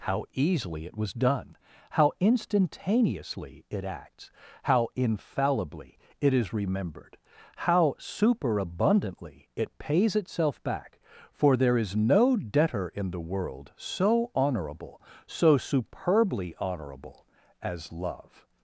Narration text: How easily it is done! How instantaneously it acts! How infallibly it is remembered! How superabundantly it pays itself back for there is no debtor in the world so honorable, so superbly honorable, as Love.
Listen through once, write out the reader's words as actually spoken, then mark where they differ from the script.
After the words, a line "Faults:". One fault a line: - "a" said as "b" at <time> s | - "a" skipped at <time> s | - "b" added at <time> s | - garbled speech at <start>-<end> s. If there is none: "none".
How easily it was done! How instantaneously it acts! How infallibly it is remembered! How superabundantly it pays itself back for there is no debtor in the world so honorable, so superbly honorable, as Love.
Faults:
- "is" said as "was" at 1.0 s